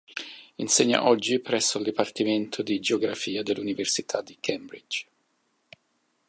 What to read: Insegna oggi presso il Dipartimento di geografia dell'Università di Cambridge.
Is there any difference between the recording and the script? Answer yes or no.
no